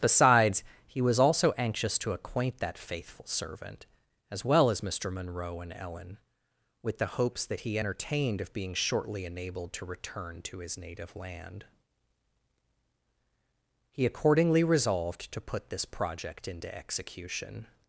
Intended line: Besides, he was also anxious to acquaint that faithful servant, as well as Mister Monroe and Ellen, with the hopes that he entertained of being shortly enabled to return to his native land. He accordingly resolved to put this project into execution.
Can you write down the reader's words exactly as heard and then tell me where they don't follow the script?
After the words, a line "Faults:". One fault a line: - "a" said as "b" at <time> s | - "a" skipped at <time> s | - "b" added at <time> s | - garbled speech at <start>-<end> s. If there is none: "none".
Besides, he was also anxious to acquaint that faithful servant, as well as Mister Monroe and Ellen, with the hopes that he entertained of being shortly enabled to return to his native land. He accordingly resolved to put this project into execution.
Faults:
none